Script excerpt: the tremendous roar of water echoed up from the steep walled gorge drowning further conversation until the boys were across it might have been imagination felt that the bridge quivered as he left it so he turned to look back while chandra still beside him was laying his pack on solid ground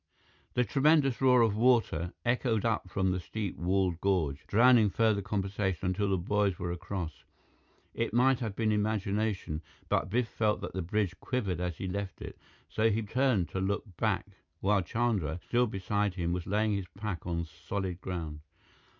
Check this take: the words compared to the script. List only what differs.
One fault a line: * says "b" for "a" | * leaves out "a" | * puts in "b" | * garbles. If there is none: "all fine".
* puts in "but biff"